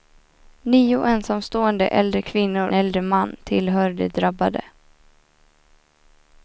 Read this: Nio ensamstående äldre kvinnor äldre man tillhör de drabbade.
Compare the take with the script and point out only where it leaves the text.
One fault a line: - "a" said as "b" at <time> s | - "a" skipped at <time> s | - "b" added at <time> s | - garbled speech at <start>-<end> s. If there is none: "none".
none